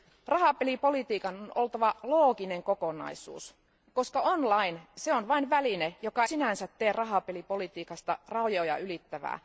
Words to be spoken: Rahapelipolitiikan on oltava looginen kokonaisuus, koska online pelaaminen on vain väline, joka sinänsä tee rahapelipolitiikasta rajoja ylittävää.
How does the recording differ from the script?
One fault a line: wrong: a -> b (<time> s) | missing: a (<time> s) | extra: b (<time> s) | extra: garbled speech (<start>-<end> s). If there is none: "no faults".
no faults